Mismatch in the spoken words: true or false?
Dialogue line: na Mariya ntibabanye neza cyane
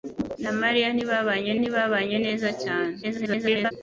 true